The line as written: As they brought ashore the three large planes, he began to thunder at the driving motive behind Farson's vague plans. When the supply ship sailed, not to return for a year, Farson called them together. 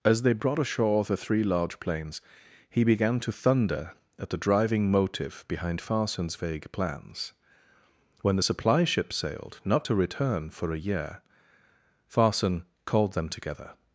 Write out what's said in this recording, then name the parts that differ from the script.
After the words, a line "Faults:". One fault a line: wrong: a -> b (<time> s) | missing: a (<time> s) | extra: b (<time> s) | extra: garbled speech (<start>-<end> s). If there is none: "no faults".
As they brought ashore the three large planes, he began to thunder at the driving motive behind Farson's vague plans. When the supply ship sailed, not to return for a year, Farson called them together.
Faults:
no faults